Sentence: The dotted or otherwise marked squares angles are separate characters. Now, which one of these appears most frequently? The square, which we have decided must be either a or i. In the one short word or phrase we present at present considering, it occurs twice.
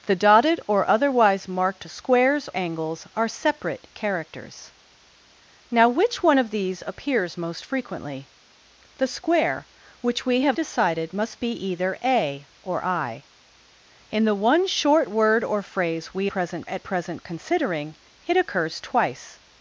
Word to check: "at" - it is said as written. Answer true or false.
true